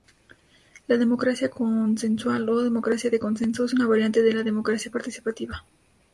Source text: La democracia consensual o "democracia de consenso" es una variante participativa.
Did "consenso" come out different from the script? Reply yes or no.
no